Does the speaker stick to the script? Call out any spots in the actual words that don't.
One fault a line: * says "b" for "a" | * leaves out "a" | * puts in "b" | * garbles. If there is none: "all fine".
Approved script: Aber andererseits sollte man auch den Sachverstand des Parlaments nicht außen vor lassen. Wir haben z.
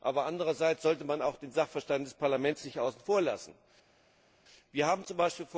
all fine